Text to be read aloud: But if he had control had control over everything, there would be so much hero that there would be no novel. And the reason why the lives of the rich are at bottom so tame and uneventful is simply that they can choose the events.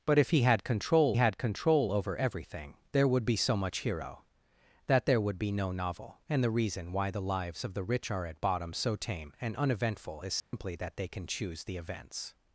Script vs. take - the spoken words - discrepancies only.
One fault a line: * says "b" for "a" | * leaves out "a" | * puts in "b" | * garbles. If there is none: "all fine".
all fine